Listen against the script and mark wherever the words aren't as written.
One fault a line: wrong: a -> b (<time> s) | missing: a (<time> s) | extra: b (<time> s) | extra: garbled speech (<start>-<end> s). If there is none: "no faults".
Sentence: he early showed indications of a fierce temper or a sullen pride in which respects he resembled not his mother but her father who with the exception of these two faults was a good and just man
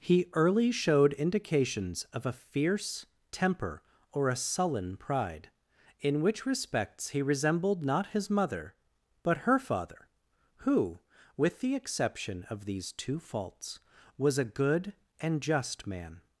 no faults